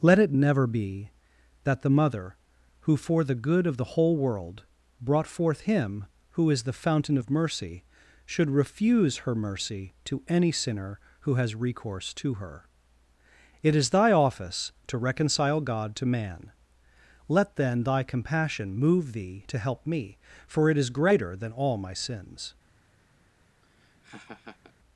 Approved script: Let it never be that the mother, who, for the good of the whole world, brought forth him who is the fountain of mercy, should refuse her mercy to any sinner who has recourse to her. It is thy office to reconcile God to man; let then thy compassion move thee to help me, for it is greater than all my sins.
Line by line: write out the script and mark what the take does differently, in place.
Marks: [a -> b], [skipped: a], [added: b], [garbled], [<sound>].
Let it never be that the mother, who, for the good of the whole world, brought forth him who is the fountain of mercy, should refuse her mercy to any sinner who has recourse to her. It is thy office to reconcile God to man; let then thy compassion move thee to help me, for it is greater than all my sins. [laugh]